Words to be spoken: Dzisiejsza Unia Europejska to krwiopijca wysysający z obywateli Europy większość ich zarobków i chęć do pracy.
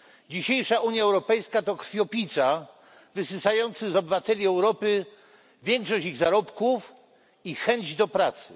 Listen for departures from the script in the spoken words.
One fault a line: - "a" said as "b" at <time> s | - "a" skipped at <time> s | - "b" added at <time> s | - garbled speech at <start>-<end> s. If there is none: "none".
none